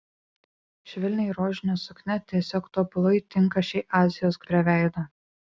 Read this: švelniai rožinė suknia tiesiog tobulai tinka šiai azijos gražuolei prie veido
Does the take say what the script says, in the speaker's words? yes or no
no